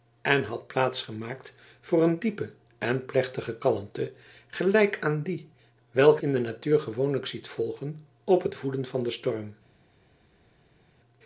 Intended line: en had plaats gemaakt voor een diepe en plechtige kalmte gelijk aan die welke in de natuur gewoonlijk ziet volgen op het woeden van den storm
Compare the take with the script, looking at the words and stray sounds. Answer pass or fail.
pass